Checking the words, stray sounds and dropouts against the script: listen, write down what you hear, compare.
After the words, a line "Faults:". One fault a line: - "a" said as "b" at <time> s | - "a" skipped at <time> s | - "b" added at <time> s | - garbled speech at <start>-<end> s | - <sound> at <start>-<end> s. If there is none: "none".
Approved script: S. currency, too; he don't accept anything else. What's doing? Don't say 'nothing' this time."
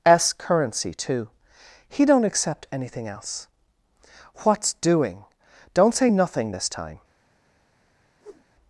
S. currency, too; he don't accept anything else. What's doing? Don't say 'nothing' this time."
Faults:
- whoosh at 8.2-8.5 s